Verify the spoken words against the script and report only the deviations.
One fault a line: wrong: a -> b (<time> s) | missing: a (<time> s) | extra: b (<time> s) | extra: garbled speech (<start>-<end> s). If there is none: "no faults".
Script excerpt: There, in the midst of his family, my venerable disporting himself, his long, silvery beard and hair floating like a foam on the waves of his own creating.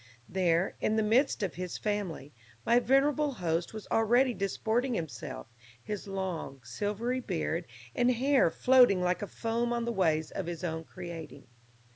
extra: host was already (3.3 s)